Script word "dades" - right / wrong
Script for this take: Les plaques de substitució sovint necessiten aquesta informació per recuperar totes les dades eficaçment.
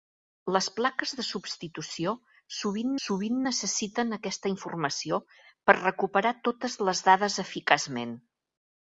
right